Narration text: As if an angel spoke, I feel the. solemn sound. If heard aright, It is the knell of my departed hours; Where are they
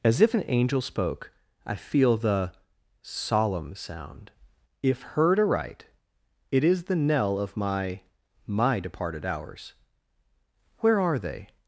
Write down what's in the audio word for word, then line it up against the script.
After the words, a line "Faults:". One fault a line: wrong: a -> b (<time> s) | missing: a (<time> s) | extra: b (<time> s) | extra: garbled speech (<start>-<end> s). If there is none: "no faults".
As if an angel spoke, I feel the. solemn sound. If heard aright, It is the knell of my my departed hours; Where are they
Faults:
extra: my (8.5 s)